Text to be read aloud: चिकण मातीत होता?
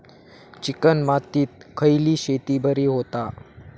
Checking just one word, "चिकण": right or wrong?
right